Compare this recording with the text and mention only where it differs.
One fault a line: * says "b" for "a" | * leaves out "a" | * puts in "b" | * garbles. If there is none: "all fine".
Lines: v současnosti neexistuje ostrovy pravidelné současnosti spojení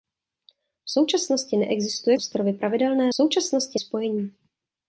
all fine